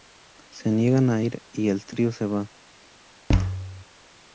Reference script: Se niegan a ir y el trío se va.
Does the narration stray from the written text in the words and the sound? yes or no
yes